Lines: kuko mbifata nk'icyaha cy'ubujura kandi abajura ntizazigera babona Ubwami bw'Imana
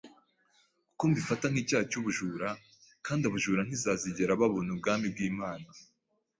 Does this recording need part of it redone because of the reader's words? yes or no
no